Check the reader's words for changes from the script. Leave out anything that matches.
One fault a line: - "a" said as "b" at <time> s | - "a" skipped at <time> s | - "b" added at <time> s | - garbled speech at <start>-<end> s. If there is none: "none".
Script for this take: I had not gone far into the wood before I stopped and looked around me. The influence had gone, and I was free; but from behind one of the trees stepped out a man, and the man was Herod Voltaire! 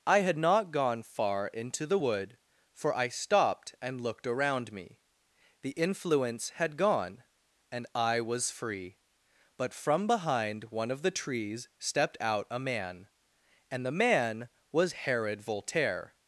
- "before" said as "for" at 2.7 s